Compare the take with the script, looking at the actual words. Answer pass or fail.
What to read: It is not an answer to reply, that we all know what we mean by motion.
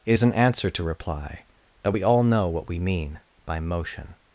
fail